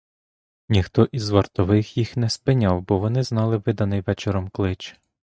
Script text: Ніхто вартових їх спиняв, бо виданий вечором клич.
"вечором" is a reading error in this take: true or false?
false